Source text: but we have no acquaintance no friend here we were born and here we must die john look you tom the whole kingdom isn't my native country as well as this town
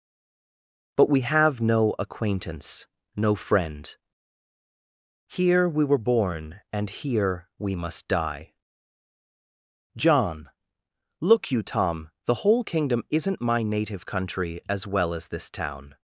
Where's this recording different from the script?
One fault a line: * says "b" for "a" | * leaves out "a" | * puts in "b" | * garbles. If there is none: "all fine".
all fine